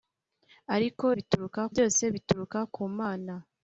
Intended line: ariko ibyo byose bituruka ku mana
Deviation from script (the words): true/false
true